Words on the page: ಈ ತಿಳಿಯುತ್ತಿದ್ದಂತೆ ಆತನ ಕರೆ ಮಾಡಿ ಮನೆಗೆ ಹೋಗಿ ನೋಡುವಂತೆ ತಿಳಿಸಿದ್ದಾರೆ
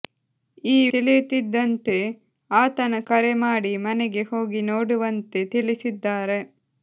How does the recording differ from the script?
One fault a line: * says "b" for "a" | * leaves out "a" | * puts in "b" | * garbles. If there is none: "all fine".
all fine